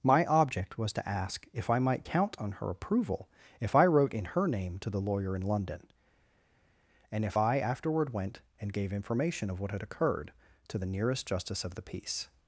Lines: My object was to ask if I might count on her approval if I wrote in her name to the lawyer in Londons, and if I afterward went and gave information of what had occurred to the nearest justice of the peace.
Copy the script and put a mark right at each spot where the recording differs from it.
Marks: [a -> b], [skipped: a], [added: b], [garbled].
My object was to ask if I might count on her approval if I wrote in her name to the lawyer in [Londons, -> London] and if I afterward went and gave information of what had occurred to the nearest justice of the peace.